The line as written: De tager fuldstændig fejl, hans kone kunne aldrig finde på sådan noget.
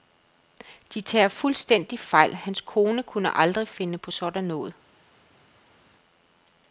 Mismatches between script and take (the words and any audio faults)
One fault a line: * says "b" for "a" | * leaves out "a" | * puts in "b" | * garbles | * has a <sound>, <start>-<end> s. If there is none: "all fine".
all fine